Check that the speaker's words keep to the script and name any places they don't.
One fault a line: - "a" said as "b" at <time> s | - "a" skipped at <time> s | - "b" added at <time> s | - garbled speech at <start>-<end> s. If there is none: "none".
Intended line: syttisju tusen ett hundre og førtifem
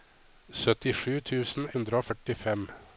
- "ett" skipped at 1.7 s